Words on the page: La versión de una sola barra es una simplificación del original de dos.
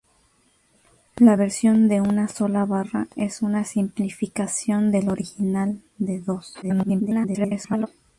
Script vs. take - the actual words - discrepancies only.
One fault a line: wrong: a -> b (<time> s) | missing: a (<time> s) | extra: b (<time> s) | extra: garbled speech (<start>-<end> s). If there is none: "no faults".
extra: garbled speech (6.6-7.9 s)